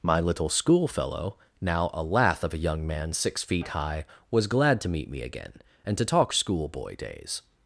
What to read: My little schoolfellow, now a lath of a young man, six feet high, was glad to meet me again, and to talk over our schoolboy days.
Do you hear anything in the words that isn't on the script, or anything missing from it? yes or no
yes